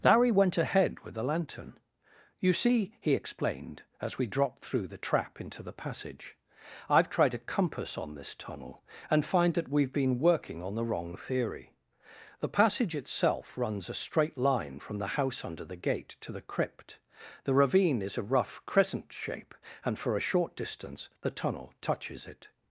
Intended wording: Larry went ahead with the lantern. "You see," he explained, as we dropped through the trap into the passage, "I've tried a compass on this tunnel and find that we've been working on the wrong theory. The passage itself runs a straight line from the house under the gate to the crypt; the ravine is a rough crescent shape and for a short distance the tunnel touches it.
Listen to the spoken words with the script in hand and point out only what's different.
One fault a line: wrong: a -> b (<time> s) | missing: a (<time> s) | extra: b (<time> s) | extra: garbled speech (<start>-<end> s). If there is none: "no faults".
no faults